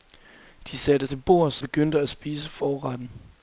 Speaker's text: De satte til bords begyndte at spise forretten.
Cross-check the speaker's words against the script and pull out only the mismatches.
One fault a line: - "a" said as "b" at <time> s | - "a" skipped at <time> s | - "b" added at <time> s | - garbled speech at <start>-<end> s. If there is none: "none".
none